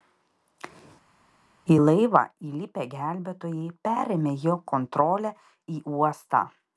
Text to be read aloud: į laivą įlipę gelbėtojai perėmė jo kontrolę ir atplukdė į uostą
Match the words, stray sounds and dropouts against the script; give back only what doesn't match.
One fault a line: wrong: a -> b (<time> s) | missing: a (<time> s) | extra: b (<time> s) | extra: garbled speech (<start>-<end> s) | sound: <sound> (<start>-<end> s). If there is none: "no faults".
missing: ir atplukdė (5.3 s)